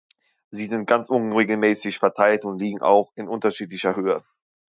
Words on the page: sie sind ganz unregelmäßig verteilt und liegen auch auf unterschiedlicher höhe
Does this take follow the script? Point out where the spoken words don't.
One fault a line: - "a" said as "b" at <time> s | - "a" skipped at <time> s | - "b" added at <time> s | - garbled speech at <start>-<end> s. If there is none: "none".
- "auf" said as "in" at 3.2 s